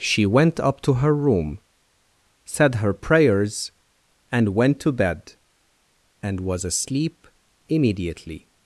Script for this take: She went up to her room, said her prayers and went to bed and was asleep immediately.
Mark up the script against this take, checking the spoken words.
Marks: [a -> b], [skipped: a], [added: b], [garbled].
She went up to her room, said her prayers and went to bed and was asleep immediately.